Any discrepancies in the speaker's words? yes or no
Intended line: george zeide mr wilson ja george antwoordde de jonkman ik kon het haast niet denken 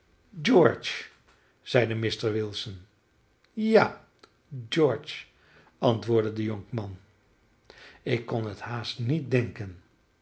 no